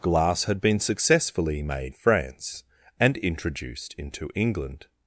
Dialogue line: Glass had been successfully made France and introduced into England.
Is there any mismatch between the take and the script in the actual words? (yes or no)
no